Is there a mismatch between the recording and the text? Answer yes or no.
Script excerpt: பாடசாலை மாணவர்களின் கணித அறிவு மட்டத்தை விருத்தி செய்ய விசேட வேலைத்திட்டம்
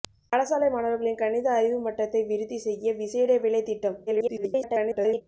yes